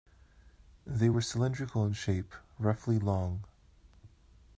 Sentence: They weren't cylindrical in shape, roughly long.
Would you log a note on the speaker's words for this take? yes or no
yes